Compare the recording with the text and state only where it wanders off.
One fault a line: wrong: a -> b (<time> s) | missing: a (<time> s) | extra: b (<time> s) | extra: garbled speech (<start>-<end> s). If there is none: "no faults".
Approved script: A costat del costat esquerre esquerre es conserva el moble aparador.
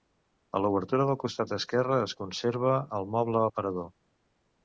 wrong: costat -> l'obertura (0.6 s)
missing: esquerre (2.0 s)